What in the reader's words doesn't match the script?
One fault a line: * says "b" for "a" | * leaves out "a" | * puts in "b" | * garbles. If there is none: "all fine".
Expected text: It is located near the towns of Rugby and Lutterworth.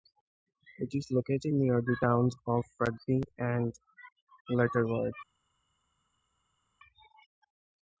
all fine